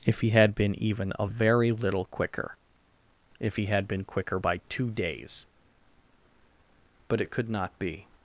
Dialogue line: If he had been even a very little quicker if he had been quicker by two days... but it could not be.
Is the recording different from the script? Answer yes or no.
no